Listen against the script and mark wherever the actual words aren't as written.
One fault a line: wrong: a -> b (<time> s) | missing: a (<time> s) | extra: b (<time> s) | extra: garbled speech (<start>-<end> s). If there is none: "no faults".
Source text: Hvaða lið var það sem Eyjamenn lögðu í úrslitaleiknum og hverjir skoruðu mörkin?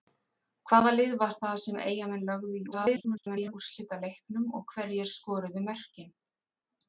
extra: garbled speech (2.7-3.5 s)